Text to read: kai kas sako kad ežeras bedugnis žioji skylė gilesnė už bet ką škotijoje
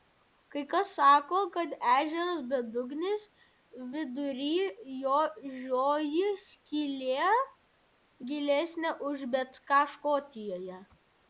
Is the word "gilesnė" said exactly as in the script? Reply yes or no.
yes